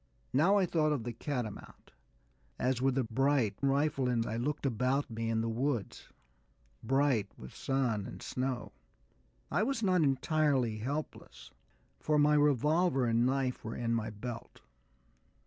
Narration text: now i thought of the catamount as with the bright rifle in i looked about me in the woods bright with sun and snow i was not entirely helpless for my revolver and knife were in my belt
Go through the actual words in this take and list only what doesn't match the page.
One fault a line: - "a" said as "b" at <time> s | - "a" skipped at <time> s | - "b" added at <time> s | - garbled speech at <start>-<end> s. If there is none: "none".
none